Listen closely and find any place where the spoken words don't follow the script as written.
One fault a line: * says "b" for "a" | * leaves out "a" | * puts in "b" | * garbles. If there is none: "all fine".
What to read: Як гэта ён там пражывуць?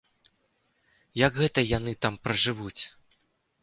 * says "яны" for "ён"